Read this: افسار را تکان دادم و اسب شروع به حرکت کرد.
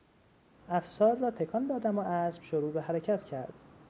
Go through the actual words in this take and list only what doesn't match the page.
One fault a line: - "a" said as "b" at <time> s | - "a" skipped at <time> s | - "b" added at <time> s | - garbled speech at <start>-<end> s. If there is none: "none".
none